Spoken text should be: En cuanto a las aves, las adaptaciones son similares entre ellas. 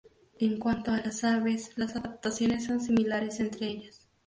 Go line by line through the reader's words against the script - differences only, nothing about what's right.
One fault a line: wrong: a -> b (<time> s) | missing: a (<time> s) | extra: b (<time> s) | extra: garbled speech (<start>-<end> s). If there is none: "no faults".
no faults